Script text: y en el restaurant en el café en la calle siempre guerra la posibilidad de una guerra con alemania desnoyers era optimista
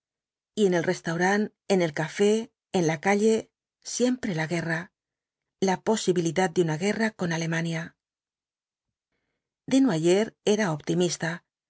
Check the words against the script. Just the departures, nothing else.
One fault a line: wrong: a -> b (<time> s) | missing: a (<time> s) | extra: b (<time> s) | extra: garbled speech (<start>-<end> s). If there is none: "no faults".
extra: la (4.3 s)